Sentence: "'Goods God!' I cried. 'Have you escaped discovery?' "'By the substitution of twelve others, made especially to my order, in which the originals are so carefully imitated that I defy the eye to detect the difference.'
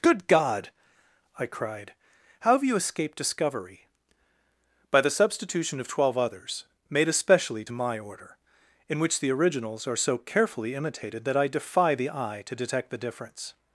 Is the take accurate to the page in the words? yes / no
no